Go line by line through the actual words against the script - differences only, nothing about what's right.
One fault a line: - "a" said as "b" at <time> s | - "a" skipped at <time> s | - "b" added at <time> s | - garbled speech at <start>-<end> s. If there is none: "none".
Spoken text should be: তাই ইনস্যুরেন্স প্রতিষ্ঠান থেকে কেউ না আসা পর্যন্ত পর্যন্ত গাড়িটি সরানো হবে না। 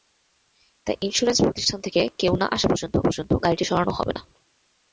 none